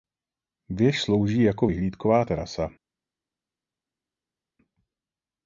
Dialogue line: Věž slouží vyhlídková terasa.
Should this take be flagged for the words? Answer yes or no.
yes